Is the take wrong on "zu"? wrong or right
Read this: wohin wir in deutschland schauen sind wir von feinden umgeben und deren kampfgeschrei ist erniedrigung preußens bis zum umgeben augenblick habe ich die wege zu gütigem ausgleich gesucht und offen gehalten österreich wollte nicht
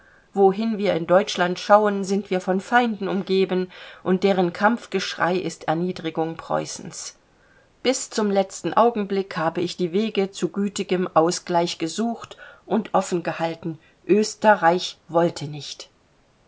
right